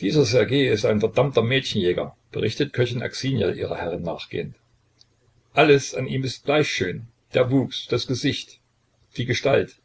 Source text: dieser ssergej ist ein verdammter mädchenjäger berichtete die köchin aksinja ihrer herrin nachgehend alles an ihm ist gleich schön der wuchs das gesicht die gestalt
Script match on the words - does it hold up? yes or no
no